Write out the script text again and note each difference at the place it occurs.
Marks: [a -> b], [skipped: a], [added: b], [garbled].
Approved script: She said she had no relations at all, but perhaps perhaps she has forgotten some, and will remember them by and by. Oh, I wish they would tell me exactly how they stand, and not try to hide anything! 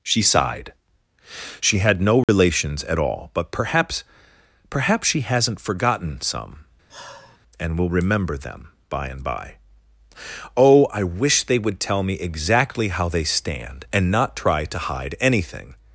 She [said -> sighed] she had no relations at all, but perhaps perhaps she [has -> hasn't] forgotten some, and will remember them by and by. Oh, I wish they would tell me exactly how they stand, and not try to hide anything!